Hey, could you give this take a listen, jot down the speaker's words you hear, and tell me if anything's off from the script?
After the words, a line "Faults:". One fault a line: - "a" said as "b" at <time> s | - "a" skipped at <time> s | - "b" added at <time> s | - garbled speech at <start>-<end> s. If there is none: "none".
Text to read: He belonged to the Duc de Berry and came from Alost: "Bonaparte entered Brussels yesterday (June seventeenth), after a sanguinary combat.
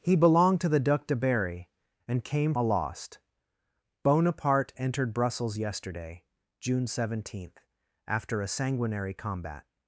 He belonged to the Duc de Berry and came Alost: "Bonaparte entered Brussels yesterday (June seventeenth), after a sanguinary combat.
Faults:
- "from" skipped at 2.5 s